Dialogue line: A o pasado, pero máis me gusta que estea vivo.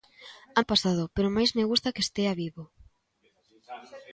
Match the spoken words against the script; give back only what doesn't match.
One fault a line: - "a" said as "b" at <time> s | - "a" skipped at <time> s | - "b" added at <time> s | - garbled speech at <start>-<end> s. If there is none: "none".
none